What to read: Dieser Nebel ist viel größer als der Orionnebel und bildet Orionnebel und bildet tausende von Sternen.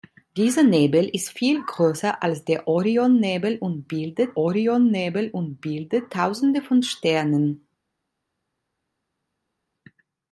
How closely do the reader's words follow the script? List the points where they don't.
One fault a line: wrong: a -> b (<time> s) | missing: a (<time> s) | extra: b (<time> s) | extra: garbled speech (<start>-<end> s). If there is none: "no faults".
no faults